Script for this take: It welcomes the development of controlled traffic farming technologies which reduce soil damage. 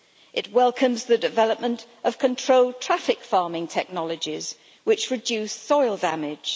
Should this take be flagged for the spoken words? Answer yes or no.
no